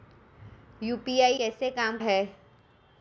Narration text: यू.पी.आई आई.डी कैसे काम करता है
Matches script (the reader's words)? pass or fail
fail